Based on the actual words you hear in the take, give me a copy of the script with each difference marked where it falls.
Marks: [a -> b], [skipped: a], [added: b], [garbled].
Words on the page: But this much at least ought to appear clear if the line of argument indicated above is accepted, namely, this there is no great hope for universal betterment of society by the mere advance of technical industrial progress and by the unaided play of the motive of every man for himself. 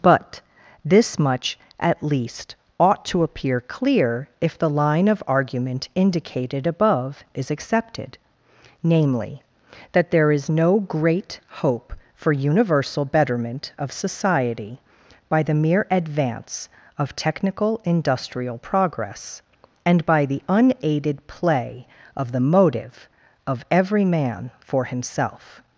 But this much at least ought to appear clear if the line of argument indicated above is accepted, namely, [this -> that] there is no great hope for universal betterment of society by the mere advance of technical industrial progress and by the unaided play of the motive of every man for himself.